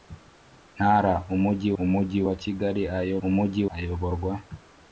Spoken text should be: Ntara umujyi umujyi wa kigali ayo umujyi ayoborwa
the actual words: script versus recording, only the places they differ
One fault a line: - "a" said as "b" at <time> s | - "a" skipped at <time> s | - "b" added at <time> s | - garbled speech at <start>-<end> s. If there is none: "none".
none